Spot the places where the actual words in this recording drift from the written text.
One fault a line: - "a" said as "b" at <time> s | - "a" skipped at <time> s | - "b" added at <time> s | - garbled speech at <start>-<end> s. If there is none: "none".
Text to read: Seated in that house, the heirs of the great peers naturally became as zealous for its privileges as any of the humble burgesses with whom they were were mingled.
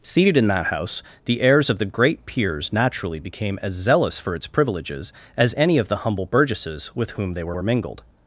none